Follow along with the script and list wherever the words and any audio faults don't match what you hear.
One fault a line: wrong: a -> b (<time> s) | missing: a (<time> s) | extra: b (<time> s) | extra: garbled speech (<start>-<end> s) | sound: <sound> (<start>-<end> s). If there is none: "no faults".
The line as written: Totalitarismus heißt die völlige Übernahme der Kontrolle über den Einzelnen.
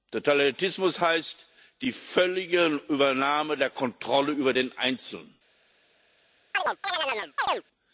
sound: chirp (6.5-7.6 s)